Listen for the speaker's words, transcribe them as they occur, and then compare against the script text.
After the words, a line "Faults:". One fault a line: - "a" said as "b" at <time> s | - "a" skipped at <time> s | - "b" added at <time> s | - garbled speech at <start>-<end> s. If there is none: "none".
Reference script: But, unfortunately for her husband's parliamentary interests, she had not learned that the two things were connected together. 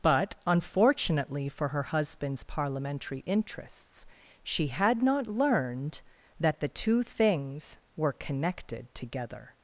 But, unfortunately for her husband's parliamentary interests, she had not learned that the two things were connected together.
Faults:
none